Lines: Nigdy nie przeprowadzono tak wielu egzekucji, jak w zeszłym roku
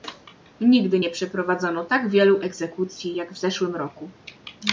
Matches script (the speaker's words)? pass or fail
pass